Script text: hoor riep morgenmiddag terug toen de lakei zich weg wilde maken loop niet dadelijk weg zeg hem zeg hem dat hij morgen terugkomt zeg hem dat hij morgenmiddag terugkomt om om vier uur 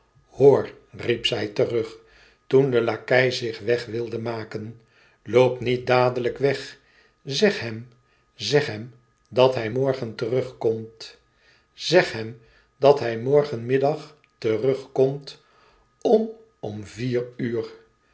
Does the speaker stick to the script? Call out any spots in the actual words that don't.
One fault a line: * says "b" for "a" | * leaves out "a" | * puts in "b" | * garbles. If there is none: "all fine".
* says "zij" for "morgenmiddag"